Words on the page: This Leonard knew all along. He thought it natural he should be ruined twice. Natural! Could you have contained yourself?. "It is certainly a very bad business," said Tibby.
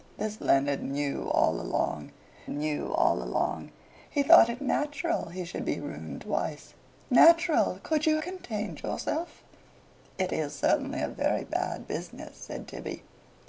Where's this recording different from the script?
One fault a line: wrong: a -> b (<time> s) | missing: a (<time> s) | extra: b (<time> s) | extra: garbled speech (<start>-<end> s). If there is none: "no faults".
extra: knew all along (2.5 s)
missing: have (8.2 s)